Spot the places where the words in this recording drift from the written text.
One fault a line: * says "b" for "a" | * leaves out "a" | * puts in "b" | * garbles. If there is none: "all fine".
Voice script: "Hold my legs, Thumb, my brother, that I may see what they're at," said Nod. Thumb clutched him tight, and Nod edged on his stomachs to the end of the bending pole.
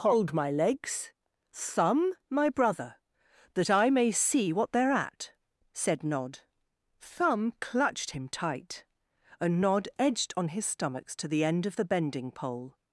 all fine